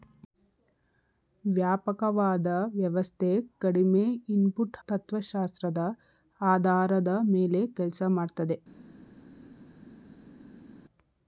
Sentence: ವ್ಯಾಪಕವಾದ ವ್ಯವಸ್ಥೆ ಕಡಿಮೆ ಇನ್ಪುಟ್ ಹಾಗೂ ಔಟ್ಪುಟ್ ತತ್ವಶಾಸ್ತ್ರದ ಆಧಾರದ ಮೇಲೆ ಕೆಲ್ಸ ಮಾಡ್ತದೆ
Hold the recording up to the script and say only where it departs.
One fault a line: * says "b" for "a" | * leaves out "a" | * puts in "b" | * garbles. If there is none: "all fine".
* leaves out "ಹಾಗೂ ಔಟ್ಪುಟ್"